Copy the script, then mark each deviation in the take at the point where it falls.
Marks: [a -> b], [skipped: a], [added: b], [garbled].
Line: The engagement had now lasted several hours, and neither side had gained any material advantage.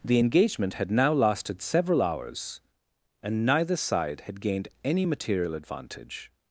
The engagement had now lasted several hours, and neither side had gained any material advantage.